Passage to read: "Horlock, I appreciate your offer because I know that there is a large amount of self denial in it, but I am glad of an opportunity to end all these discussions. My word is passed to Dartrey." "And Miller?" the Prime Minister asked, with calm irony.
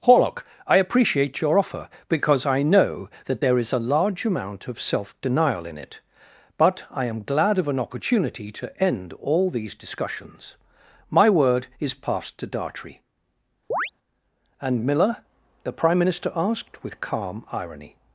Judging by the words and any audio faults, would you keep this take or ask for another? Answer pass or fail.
fail